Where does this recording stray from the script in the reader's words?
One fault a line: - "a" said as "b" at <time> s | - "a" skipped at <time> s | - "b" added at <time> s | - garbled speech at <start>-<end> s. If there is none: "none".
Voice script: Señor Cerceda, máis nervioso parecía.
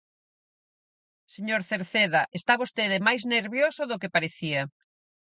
- "está vostede" added at 2.4 s
- "do que" added at 3.9 s